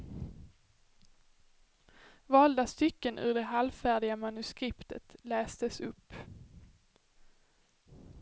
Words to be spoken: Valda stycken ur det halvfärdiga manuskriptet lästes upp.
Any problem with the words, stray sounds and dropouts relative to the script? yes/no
no